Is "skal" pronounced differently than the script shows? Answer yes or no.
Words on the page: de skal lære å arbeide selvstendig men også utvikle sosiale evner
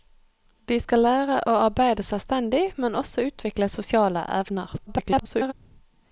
no